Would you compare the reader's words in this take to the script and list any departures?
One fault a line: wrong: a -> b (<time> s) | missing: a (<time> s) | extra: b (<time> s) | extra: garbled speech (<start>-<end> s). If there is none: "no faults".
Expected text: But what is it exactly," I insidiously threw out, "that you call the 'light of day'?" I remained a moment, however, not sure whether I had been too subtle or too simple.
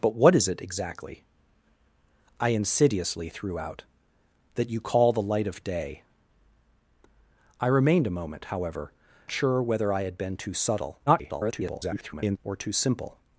missing: not (8.9 s)
extra: garbled speech (11.1-12.4 s)